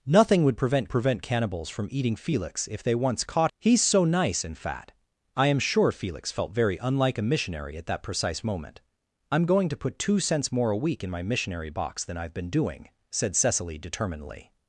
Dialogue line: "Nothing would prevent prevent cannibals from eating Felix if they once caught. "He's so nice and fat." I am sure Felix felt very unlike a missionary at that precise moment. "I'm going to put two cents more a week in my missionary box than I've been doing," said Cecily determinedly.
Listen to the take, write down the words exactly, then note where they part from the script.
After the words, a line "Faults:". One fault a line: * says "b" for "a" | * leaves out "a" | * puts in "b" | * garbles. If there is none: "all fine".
"Nothing would prevent prevent cannibals from eating Felix if they once caught. "He's so nice and fat." I am sure Felix felt very unlike a missionary at that precise moment. "I'm going to put two cents more a week in my missionary box than I've been doing," said Cecily determinedly.
Faults:
all fine